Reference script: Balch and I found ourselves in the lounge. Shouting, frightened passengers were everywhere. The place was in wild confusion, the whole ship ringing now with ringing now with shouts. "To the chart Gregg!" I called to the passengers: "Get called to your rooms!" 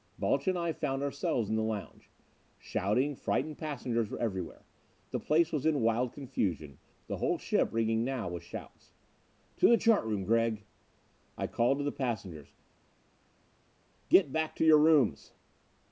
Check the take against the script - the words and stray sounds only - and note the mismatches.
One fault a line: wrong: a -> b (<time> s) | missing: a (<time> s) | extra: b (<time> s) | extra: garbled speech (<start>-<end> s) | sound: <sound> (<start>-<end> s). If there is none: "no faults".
missing: ringing now with (8.4 s)
extra: room (10.0 s)
wrong: called -> back (14.3 s)